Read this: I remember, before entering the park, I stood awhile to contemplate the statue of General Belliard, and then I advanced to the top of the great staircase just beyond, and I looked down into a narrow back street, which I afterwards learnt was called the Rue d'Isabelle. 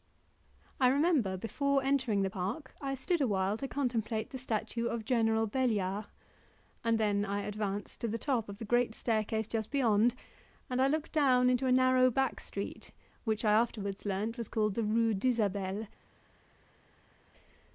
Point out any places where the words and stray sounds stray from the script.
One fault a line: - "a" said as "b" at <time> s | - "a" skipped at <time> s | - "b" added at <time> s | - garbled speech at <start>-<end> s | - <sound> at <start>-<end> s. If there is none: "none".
none